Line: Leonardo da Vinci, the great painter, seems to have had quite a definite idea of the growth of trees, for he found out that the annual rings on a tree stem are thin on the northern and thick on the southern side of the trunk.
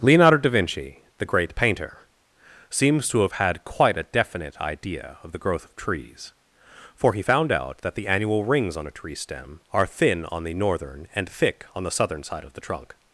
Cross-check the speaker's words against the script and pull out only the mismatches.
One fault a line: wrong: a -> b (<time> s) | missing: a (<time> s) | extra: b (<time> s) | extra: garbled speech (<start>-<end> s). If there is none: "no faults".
no faults